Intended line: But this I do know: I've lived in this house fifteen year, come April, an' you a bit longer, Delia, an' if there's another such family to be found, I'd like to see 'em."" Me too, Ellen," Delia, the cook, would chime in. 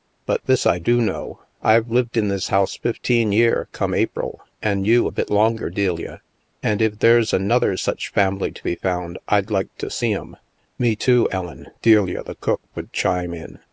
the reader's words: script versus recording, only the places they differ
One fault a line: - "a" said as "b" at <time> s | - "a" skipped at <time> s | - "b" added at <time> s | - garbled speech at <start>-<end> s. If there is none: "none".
none